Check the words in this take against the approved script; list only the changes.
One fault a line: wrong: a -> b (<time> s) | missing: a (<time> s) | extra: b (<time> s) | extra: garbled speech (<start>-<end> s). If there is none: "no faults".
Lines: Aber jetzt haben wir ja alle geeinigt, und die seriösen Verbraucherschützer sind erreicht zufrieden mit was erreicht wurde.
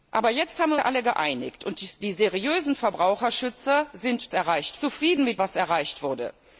no faults